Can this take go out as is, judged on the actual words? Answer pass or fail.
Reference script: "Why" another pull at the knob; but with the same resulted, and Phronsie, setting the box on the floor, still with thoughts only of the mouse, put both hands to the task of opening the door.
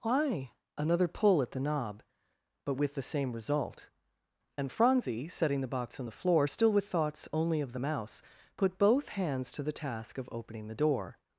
fail